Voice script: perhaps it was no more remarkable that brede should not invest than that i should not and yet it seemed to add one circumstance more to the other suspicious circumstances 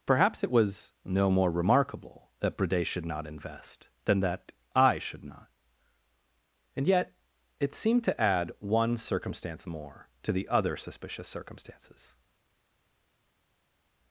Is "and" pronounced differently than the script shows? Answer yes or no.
no